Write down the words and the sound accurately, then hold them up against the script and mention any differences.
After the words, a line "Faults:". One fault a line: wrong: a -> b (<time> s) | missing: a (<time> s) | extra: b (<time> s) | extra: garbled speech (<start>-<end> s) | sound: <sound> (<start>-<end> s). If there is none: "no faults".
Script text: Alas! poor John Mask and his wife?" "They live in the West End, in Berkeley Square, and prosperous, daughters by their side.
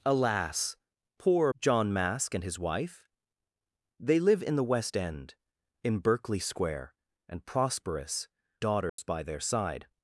Alas! poor John Mask and his wife?" "They live in the West End, in Berkeley Square, and prosperous, daughters by their side.
Faults:
sound: dropout (8.9-9.0 s)